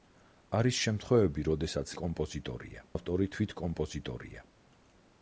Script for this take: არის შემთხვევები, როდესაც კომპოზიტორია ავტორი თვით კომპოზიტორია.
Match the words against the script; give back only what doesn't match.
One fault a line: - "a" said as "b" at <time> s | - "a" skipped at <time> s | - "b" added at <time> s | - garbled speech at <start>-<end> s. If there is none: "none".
none